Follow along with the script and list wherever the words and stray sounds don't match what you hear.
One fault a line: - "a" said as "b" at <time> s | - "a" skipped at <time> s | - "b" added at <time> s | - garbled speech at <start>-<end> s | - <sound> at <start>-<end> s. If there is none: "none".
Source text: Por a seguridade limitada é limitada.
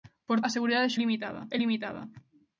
none